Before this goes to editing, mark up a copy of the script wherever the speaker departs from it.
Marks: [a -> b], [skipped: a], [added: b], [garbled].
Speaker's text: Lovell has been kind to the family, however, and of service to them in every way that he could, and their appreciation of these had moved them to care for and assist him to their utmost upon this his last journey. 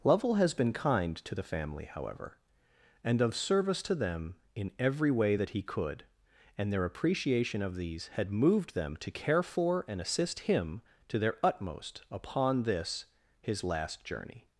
Lovell has been kind to the family, however, and of service to them in every way that he could, and their appreciation of these had moved them to care for and assist him to their utmost upon this his last journey.